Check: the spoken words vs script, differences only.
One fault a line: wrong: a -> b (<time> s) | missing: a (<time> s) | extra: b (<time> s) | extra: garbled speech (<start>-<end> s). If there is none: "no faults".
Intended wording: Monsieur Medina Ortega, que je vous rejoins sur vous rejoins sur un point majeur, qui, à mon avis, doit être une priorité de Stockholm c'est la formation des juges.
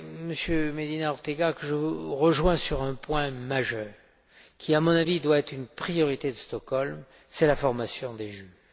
missing: vous rejoins sur (2.8 s)